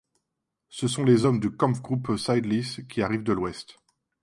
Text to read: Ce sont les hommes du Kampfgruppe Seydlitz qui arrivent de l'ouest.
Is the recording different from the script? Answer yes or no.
no